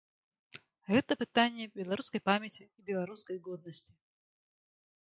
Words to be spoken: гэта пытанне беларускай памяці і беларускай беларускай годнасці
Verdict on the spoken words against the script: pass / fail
fail